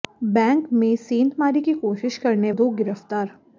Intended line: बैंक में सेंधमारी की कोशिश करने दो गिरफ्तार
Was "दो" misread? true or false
false